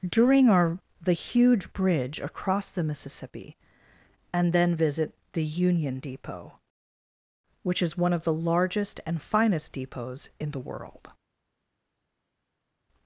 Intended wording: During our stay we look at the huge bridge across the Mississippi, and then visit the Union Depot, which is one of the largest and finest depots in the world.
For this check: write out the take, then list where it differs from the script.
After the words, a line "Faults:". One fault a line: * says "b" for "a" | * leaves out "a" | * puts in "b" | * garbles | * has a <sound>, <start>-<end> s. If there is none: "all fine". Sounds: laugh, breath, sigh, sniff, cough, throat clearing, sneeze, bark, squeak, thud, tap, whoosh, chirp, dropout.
During our the huge bridge across the Mississippi, and then visit the Union Depot, which is one of the largest and finest depots in the world.
Faults:
* leaves out "stay we look at"